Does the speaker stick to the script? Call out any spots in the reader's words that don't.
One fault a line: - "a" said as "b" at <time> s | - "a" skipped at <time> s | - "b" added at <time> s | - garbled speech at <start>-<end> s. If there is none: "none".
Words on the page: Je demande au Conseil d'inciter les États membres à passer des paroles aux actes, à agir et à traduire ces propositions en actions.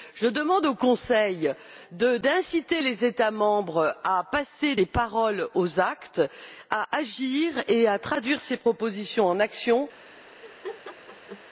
none